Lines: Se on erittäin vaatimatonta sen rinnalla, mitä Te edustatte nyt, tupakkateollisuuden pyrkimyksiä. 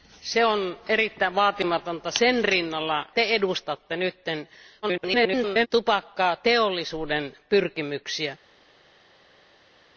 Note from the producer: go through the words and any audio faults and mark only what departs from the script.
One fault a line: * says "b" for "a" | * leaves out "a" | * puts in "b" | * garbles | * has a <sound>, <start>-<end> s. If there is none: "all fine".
* leaves out "mitä"
* garbles